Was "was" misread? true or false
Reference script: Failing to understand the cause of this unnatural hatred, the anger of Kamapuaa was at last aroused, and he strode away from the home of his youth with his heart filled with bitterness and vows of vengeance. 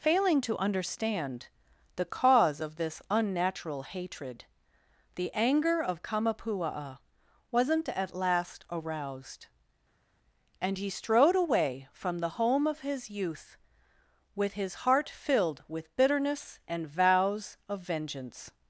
true